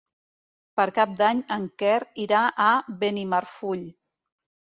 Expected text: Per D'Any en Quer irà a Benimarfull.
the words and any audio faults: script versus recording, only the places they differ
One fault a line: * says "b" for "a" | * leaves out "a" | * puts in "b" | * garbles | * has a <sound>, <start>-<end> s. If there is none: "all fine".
* puts in "Cap"